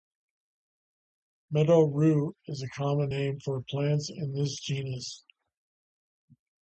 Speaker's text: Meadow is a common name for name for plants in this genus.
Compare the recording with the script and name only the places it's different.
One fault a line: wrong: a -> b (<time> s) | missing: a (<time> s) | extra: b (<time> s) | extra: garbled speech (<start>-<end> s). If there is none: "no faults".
extra: rue (1.8 s)
missing: name for (3.6 s)